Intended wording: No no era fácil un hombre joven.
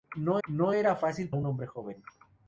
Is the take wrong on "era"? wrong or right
right